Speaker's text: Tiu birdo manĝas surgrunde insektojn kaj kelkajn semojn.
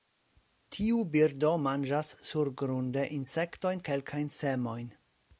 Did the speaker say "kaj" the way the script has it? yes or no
no